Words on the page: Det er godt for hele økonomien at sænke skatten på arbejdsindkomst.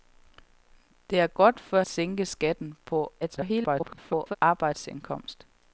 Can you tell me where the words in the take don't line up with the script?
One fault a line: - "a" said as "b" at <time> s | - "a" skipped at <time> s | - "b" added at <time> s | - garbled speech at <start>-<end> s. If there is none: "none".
- "hele økonomien at" skipped at 1.8 s
- garbled speech at 3.2-4.4 s